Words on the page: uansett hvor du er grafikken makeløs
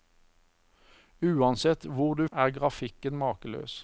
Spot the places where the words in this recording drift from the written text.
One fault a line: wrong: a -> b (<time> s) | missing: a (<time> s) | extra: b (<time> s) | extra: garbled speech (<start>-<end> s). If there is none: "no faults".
no faults